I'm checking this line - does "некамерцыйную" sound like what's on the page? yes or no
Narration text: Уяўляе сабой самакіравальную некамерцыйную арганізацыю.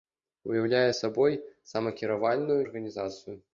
no